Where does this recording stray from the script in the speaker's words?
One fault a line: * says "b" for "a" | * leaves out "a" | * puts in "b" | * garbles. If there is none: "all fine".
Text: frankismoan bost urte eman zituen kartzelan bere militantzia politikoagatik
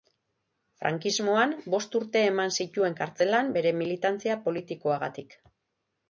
all fine